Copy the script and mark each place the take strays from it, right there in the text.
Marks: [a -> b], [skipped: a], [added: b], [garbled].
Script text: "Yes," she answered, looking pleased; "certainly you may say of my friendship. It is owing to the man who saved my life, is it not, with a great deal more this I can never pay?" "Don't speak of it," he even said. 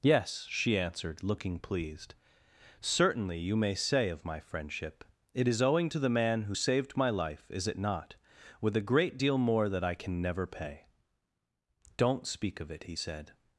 "Yes," she answered, looking pleased; "certainly you may say of my friendship. It is owing to the man who saved my life, is it not, with a great deal more [this -> that] I can never pay?" "Don't speak of it," he [skipped: even] said.